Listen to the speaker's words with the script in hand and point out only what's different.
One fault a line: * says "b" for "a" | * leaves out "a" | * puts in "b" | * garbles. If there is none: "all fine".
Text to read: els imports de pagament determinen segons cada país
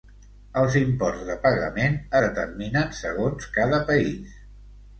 all fine